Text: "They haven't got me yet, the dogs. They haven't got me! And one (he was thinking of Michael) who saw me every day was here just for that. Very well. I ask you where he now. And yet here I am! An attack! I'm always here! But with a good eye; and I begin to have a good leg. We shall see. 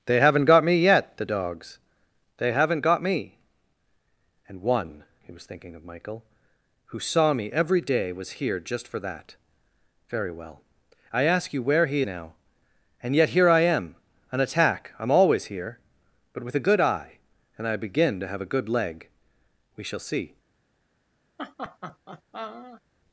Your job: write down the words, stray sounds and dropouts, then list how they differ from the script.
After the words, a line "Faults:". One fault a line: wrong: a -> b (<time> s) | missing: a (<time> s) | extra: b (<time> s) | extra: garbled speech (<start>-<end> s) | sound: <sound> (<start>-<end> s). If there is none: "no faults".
"They haven't got me yet, the dogs. They haven't got me! And one (he was thinking of Michael) who saw me every day was here just for that. Very well. I ask you where he now. And yet here I am! An attack! I'm always here! But with a good eye; and I begin to have a good leg. We shall see.
Faults:
sound: laugh (21.4-22.8 s)